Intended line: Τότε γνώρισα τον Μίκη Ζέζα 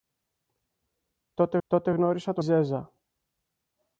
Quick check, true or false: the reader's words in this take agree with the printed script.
false